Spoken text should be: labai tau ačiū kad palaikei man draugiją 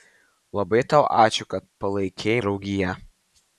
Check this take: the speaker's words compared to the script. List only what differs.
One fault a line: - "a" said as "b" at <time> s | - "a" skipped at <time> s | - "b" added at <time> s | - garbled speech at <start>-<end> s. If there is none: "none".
- "man" skipped at 2.4 s